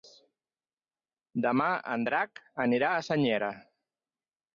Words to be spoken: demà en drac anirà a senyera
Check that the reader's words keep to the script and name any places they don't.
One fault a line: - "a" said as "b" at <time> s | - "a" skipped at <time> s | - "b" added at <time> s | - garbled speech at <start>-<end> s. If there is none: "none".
none